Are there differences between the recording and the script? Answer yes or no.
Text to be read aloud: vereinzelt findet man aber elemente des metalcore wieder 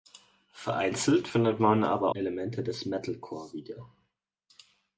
no